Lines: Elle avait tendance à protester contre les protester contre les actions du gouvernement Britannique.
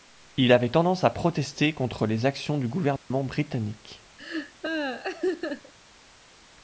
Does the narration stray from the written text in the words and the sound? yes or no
yes